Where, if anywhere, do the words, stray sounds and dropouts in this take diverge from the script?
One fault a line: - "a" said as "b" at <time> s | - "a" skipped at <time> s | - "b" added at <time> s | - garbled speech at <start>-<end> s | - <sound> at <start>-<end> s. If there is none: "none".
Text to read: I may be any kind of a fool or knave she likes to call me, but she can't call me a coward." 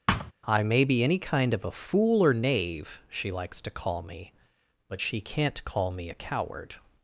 - thud at 0.1-0.3 s